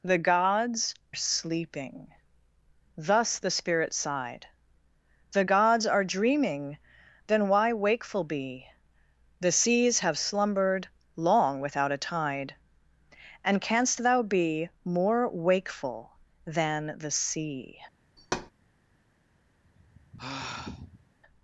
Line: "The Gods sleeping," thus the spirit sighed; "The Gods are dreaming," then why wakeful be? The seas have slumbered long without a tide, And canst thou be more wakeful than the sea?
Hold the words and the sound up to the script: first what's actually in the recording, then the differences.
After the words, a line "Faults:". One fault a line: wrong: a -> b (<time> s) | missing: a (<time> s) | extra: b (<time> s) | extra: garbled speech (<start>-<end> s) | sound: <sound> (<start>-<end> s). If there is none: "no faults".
"The Gods sleeping," thus the spirit sighed; "The Gods are dreaming," then why wakeful be? The seas have slumbered long without a tide, And canst thou be more wakeful than the sea?
Faults:
sound: thud (18.2-18.5 s)
sound: sigh (19.6-21.1 s)